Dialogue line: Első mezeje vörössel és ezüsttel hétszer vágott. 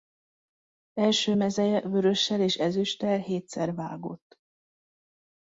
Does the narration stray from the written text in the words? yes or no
no